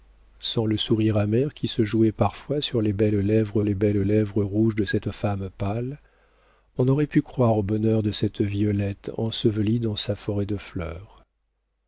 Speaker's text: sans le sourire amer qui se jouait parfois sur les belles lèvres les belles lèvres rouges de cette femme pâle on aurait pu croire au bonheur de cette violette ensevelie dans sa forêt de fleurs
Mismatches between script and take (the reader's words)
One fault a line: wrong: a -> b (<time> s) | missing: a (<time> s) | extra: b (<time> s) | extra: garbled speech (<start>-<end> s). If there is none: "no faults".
no faults